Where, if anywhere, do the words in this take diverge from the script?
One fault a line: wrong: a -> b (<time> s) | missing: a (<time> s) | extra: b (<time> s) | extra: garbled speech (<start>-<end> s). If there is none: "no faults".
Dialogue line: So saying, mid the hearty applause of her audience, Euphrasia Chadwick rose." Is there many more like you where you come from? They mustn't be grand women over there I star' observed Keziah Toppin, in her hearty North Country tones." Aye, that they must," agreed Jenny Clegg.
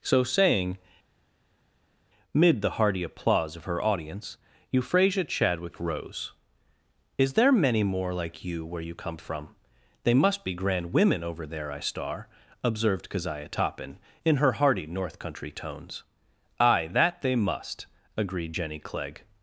wrong: mustn't -> must (10.1 s)